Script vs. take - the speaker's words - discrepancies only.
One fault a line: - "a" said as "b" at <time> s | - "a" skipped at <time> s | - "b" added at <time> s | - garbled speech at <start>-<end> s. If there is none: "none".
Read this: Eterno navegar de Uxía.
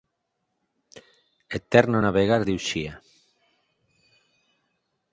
none